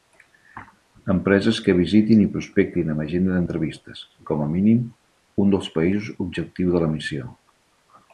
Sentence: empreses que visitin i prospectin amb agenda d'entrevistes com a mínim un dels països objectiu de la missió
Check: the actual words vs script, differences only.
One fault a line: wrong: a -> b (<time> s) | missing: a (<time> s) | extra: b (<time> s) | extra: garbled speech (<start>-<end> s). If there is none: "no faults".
no faults